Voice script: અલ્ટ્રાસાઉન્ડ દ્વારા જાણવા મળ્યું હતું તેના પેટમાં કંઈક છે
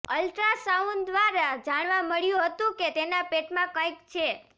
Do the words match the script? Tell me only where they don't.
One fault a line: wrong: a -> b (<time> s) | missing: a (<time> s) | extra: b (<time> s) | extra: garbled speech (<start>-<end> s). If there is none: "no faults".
extra: કે (2.8 s)